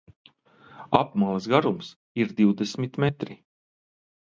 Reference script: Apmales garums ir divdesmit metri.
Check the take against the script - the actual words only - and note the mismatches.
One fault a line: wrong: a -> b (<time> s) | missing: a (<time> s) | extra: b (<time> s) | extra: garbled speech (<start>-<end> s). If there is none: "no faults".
no faults